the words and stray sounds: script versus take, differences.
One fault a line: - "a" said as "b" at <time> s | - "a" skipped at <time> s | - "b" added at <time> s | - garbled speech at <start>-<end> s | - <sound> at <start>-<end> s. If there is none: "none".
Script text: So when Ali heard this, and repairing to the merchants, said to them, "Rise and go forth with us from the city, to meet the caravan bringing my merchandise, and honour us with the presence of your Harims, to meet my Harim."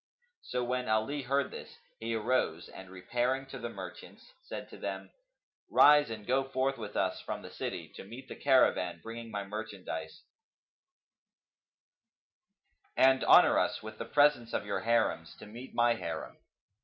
- "he arose" added at 2.0 s